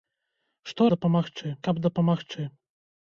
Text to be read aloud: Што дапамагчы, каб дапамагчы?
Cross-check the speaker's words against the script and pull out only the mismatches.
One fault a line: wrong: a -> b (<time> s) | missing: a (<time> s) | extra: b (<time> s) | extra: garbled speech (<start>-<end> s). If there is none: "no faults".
no faults